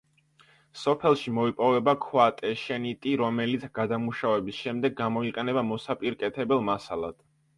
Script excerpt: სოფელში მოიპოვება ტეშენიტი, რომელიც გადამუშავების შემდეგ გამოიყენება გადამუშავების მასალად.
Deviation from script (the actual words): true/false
true